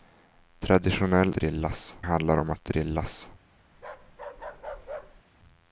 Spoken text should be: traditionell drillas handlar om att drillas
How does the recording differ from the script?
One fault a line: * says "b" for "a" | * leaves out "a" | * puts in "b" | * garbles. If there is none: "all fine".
all fine